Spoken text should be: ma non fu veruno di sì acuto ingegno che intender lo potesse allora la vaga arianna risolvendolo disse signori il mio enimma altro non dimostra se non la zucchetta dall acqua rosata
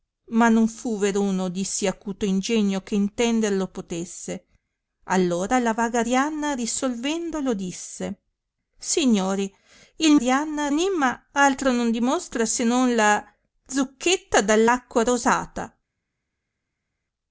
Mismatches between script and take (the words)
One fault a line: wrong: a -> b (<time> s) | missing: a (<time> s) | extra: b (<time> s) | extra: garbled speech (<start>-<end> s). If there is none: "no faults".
wrong: mio -> arianna (10.1 s)